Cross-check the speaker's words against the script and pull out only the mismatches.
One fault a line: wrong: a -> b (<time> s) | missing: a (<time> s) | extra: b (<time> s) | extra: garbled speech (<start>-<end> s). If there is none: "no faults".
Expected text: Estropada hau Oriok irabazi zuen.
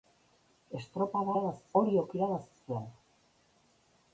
wrong: hau -> irabazi (1.3 s)